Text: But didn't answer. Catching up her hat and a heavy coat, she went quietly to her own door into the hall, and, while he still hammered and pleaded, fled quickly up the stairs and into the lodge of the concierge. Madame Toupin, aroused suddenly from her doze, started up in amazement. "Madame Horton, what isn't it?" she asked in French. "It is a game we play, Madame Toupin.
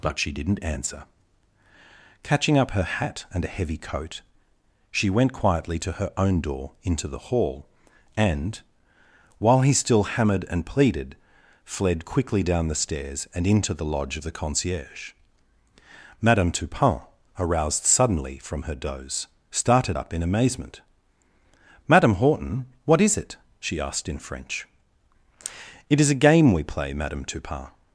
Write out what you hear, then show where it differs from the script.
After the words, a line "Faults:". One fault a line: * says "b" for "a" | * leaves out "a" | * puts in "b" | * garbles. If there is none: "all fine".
But she didn't answer. Catching up her hat and a heavy coat, she went quietly to her own door into the hall, and, while he still hammered and pleaded, fled quickly down the stairs and into the lodge of the concierge. Madame Toupin, aroused suddenly from her doze, started up in amazement. "Madame Horton, what is it?" she asked in French. "It is a game we play, Madame Toupin.
Faults:
* puts in "she"
* says "down" for "up"
* says "is" for "isn't"